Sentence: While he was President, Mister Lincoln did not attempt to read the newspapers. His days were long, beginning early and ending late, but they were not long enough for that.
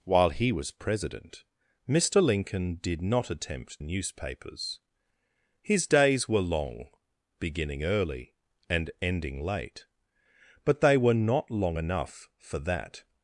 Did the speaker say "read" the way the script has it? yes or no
no